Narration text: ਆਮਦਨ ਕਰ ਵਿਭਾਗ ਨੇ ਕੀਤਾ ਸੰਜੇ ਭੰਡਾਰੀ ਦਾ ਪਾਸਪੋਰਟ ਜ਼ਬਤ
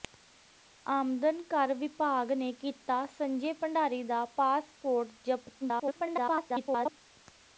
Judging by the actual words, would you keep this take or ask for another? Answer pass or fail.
fail